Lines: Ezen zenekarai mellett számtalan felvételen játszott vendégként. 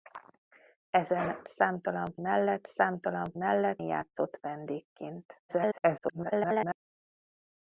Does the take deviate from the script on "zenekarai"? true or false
true